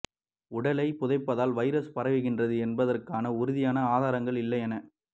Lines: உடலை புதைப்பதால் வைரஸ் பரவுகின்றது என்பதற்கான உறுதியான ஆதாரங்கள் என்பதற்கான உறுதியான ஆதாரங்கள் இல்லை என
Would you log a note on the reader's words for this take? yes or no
yes